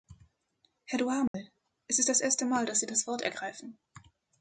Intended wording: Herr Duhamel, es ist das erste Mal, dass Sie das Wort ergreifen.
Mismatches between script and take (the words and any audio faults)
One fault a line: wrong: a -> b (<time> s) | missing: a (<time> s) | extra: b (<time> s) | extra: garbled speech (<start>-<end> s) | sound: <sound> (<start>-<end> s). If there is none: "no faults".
sound: dropout (1.3-1.3 s)